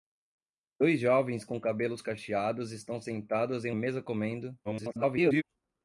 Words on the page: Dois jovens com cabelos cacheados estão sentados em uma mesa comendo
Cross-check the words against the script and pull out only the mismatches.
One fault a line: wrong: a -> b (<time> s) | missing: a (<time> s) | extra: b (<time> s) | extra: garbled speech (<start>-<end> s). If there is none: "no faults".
missing: uma (3.7 s)
extra: garbled speech (4.6-5.4 s)